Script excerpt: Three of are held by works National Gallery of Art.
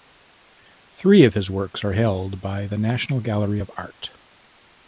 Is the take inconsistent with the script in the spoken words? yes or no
yes